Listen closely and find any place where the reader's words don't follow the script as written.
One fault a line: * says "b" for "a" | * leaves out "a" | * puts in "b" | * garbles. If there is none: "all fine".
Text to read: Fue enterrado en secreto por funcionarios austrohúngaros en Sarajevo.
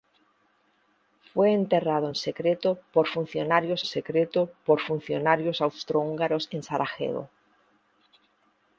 * puts in "secreto por funcionarios"